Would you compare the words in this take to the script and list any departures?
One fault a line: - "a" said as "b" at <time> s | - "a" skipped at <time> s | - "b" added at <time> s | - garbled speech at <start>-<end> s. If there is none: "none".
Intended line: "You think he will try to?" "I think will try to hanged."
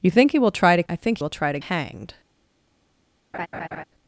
none